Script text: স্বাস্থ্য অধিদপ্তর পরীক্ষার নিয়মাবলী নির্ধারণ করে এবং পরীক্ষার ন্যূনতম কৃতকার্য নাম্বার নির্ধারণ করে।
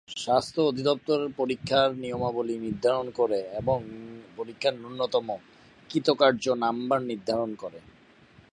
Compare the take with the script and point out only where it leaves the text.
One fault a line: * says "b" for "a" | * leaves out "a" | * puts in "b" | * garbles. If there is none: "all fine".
all fine